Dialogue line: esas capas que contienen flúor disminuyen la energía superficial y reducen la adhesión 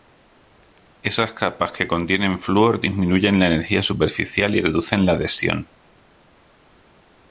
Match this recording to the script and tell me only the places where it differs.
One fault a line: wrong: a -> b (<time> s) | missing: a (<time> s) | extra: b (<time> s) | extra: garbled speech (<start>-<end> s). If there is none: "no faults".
no faults